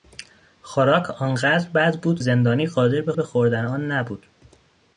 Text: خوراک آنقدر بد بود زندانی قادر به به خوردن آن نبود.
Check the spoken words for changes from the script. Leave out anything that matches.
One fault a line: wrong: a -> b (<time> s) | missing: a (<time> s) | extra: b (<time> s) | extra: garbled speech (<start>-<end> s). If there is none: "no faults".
no faults